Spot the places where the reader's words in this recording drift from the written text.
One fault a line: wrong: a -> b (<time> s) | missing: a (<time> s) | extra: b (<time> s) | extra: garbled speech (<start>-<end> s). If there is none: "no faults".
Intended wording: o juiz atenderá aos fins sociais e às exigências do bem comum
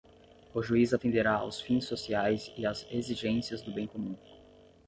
no faults